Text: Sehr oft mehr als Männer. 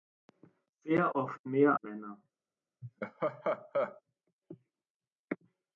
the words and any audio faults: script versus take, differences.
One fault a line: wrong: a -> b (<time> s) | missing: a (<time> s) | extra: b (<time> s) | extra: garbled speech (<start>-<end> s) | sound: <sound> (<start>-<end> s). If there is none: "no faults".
missing: als (1.8 s)
sound: laugh (2.8-4.0 s)